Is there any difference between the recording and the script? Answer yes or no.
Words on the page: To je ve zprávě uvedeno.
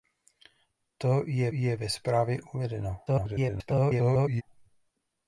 yes